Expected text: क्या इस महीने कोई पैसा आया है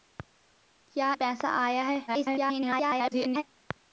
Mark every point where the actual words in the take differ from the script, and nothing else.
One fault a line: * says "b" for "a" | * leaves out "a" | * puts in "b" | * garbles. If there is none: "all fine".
* leaves out "इस महीने कोई"
* garbles